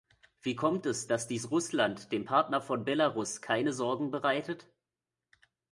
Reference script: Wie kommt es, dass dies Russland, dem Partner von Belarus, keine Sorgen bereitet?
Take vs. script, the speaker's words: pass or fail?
pass